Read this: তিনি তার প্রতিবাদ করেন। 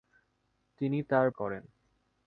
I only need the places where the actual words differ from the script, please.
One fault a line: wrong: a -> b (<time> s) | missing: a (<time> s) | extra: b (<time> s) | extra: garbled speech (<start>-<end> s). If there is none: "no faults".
missing: প্রতিবাদ (1.3 s)